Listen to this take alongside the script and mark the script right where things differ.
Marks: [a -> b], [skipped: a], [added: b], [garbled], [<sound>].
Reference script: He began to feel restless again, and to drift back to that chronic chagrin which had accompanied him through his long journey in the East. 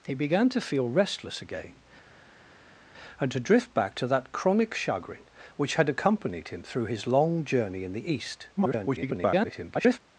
He began to feel restless again, and to drift back to that chronic chagrin which had accompanied him through his long journey in the East. [garbled]